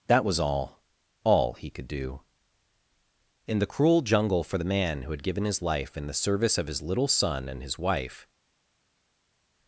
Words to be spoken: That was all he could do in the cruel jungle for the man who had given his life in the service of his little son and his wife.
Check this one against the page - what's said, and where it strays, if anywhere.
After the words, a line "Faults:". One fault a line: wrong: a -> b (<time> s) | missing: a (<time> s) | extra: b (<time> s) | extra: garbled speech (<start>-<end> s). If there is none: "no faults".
That was all all he could do in the cruel jungle for the man who had given his life in the service of his little son and his wife.
Faults:
extra: all (1.2 s)